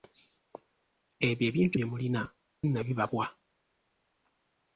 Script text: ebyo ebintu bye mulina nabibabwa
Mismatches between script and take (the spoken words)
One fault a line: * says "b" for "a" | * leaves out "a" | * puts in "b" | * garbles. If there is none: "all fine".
all fine